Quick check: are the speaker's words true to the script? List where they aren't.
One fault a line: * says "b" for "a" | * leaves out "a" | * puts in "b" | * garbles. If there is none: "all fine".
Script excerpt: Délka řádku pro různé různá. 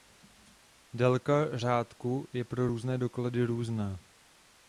* puts in "je"
* puts in "doklady"